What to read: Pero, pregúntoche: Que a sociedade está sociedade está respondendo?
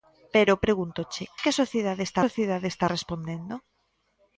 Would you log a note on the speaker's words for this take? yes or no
no